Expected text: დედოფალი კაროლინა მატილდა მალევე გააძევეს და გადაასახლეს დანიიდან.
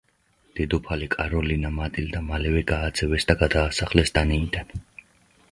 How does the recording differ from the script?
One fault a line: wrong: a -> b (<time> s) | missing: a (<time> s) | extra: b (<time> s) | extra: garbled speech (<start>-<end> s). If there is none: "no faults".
no faults